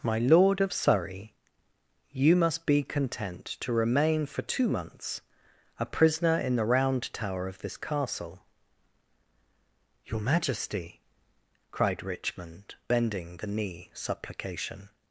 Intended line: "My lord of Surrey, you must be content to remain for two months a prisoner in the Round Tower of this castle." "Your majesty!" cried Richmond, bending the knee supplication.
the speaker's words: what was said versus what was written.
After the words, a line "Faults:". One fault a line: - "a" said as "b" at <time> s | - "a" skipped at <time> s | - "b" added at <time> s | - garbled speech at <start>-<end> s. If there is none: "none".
"My lord of Surrey, you must be content to remain for two months a prisoner in the Round Tower of this castle." "Your majesty!" cried Richmond, bending the knee supplication.
Faults:
none